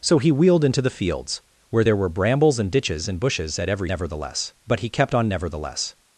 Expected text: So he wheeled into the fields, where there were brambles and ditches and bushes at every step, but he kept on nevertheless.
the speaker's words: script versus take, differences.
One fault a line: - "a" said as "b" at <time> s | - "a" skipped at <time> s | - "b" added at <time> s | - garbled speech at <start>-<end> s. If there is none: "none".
- "step" said as "nevertheless" at 3.9 s